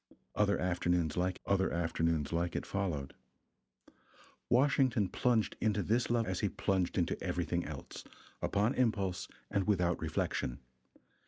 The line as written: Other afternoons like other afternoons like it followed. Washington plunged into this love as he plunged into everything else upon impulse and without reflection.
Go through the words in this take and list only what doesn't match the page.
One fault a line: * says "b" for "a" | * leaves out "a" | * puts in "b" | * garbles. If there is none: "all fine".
all fine